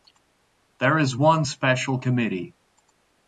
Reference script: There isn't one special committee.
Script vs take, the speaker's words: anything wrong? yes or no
yes